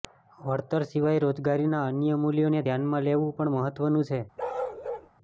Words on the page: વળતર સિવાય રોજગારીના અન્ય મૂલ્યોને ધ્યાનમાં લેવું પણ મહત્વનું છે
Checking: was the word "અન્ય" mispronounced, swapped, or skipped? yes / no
no